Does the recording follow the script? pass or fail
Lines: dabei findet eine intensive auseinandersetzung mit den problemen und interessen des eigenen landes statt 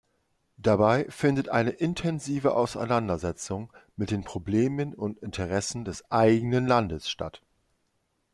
pass